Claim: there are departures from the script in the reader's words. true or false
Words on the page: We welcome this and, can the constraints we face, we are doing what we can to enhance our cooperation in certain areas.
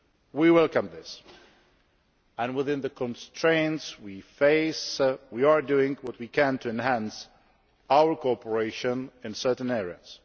true